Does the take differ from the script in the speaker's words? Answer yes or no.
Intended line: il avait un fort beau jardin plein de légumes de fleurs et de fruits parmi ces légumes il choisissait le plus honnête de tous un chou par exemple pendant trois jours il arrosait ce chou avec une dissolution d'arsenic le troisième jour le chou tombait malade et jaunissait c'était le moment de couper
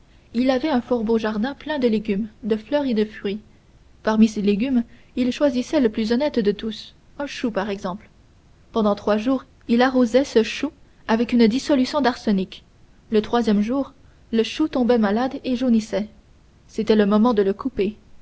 yes